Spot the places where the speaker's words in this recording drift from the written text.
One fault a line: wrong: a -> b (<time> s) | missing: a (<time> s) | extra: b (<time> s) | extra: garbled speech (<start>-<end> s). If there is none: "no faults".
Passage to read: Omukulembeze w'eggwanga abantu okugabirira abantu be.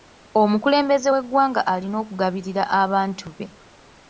wrong: abantu -> alina (1.7 s)